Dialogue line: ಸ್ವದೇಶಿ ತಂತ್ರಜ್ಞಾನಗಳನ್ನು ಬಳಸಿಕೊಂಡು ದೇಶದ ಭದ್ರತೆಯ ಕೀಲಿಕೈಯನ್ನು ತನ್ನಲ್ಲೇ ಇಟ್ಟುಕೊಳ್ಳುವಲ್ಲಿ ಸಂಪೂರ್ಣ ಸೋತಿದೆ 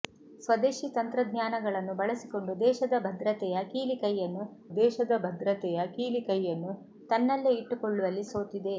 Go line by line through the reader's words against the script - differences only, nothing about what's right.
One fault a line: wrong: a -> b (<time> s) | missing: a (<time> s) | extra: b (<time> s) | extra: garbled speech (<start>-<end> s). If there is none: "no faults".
extra: ದೇಶದ ಭದ್ರತೆಯ ಕೀಲಿಕೈಯನ್ನು (4.8 s)
missing: ಸಂಪೂರ್ಣ (8.2 s)